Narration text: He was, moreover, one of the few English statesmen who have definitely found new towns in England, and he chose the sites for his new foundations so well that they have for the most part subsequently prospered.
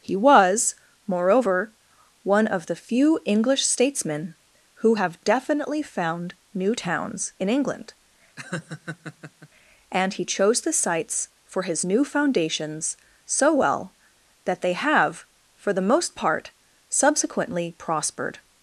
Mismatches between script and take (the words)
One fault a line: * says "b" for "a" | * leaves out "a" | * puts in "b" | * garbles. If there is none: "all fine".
all fine